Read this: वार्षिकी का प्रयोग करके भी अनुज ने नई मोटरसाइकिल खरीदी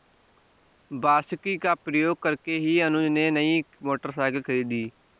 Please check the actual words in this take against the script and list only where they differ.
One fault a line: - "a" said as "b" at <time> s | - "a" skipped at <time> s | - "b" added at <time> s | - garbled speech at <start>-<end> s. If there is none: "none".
- "भी" said as "ही" at 2.6 s